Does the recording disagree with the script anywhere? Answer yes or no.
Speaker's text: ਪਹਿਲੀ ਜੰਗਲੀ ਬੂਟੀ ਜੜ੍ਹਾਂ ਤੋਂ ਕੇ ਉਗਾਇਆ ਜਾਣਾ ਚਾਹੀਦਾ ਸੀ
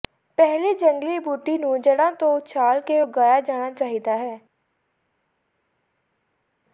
yes